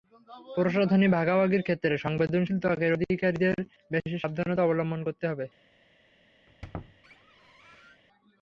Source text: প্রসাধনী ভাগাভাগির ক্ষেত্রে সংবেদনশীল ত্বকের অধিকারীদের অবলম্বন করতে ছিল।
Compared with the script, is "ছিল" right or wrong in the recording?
wrong